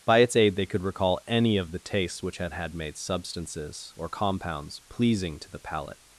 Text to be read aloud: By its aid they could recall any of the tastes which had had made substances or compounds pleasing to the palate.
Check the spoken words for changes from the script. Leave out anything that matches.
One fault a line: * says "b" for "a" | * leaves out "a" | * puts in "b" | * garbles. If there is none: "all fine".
all fine